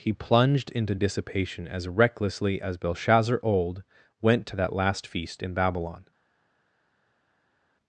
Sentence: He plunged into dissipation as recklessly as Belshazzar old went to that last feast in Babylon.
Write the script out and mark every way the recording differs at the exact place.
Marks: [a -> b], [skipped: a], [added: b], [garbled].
He plunged into dissipation as recklessly as Belshazzar old went to that last feast in Babylon.